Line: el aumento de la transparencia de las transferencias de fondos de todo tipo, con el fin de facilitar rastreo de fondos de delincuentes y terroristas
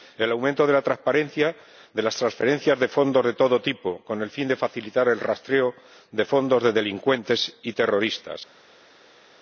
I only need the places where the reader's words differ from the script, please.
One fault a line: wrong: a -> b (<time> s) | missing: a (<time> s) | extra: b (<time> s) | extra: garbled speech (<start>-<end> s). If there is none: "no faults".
extra: el (5.1 s)